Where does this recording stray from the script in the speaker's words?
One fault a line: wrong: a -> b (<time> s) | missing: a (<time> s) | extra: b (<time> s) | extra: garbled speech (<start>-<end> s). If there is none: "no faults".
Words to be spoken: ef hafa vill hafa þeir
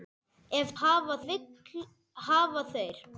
no faults